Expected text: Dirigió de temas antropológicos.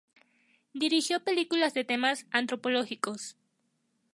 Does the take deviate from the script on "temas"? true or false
false